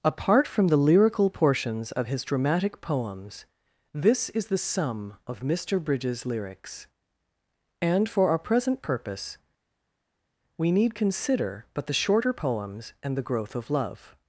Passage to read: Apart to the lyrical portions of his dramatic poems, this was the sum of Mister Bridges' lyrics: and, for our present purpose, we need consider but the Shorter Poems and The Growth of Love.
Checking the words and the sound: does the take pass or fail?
fail